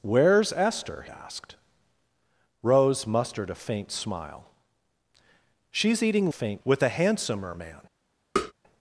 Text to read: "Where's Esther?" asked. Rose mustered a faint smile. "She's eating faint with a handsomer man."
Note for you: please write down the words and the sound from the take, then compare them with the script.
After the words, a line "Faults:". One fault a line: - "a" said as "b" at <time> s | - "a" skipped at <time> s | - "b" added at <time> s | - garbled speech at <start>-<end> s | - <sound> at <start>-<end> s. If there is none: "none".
"Where's Esther?" asked. Rose mustered a faint smile. "She's eating faint with a handsomer man."
Faults:
- tap at 8.4-8.5 s